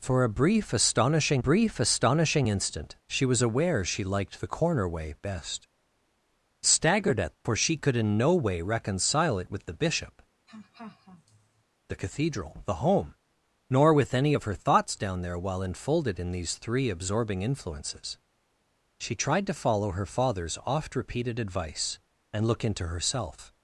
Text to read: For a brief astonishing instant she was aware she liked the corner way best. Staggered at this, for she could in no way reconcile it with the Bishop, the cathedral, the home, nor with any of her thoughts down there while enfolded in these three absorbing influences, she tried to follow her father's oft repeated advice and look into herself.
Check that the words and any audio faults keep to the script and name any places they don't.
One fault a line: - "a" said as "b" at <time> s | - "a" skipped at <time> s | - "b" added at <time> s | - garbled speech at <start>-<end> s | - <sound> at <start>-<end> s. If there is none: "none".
- "brief astonishing" added at 1.4 s
- "this" skipped at 7.4 s
- laugh at 10.5-11.6 s